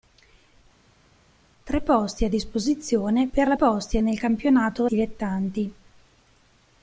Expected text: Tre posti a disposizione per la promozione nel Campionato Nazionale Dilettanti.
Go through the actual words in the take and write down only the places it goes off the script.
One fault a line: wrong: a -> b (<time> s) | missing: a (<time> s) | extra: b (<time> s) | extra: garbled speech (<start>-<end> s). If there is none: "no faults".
wrong: promozione -> posti (3.5 s)
missing: Nazionale (4.9 s)